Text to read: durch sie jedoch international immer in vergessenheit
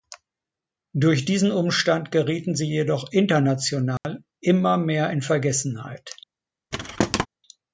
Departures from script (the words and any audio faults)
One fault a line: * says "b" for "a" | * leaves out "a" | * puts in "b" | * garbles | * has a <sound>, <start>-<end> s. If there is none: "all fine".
* puts in "diesen umstand gerieten"
* has a dropout, 4.0-4.0 s
* puts in "mehr"
* has a thud, 6.7-7.3 s